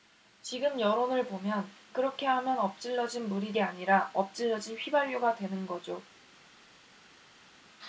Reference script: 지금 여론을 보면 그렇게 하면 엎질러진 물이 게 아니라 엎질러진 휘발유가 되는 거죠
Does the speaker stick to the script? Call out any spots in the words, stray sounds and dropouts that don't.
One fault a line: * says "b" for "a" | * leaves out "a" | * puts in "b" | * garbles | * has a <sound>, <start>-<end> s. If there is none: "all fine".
all fine